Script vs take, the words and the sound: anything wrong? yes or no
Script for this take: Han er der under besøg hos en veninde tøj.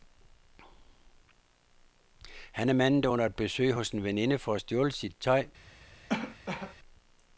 yes